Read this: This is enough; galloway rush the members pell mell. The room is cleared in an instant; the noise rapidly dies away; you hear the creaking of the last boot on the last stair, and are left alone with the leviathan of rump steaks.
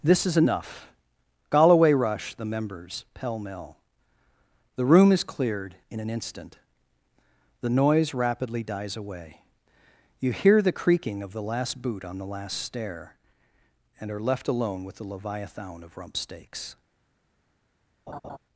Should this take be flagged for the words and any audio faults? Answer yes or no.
yes